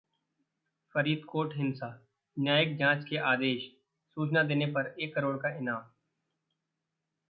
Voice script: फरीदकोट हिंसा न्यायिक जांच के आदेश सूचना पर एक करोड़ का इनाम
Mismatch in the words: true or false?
true